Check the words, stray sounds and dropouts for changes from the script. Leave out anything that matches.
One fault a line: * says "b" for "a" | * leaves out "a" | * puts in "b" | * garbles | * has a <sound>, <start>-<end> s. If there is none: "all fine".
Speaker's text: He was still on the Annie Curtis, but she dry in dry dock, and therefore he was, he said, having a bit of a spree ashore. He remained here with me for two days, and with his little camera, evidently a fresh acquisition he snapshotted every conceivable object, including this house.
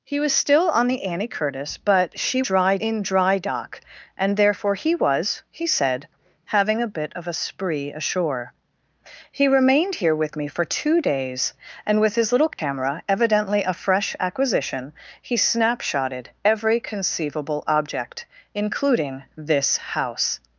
* has a dropout, 12.5-12.6 s